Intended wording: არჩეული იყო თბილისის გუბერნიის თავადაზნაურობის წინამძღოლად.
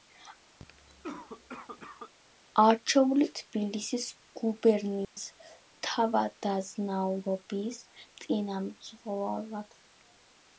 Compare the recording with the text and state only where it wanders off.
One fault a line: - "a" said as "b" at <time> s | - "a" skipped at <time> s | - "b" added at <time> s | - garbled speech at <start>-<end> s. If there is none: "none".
- "იყო" skipped at 3.3 s